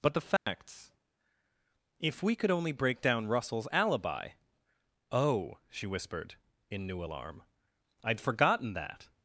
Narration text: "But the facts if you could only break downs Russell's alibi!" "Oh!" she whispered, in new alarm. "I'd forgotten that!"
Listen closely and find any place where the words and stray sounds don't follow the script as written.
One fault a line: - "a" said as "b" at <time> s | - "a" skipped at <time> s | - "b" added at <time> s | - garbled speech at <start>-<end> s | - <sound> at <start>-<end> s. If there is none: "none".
- dropout at 0.4-0.5 s
- "you" said as "we" at 2.2 s
- "downs" said as "down" at 3.0 s